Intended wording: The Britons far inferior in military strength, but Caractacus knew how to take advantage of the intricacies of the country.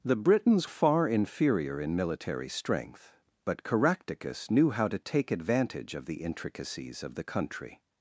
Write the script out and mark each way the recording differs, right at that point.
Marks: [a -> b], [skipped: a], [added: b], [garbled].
The Britons far inferior in military strength, but Caractacus knew how to take advantage of the intricacies of the country.